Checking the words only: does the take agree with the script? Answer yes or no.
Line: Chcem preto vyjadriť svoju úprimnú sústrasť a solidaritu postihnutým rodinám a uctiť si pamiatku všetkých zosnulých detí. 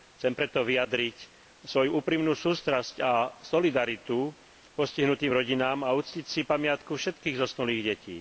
yes